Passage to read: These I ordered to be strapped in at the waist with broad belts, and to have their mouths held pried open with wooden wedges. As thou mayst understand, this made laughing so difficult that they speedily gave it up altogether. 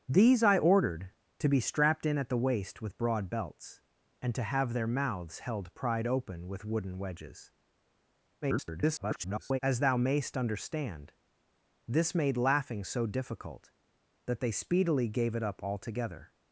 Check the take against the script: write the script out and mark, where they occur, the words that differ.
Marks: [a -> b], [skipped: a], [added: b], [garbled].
These I ordered to be strapped in at the waist with broad belts, and to have their mouths held pried open with wooden wedges. [garbled] As thou mayst understand, this made laughing so difficult that they speedily gave it up altogether.